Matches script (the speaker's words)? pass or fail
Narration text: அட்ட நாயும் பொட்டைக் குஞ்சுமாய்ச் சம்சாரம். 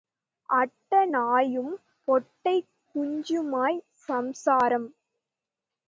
pass